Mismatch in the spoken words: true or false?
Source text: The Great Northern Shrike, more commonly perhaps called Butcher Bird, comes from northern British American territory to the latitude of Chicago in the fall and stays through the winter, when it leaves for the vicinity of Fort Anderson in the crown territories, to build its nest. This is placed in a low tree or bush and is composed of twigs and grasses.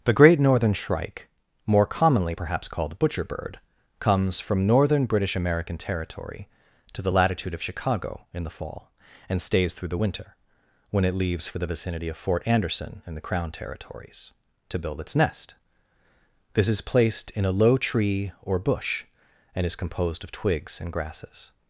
false